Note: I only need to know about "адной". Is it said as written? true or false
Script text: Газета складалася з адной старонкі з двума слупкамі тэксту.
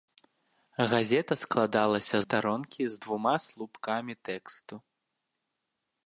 false